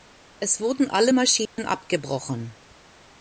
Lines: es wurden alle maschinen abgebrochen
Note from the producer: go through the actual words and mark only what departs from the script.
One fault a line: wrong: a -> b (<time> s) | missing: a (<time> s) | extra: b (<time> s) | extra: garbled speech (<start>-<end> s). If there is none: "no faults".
no faults